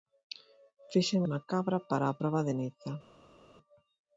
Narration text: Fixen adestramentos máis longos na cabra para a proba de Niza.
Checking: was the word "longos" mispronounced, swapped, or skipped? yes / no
yes